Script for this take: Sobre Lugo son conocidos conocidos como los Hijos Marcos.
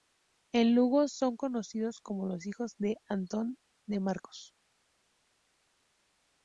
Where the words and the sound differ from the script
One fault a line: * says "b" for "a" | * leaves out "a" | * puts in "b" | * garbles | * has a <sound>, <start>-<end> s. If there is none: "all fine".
* says "En" for "Sobre"
* leaves out "conocidos"
* puts in "de Antón de"